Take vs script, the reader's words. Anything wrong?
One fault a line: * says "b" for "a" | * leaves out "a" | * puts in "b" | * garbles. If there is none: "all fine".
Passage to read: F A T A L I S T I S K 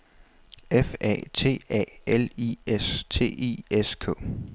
all fine